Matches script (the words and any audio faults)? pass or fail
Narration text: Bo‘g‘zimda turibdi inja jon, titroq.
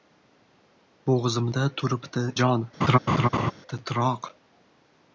fail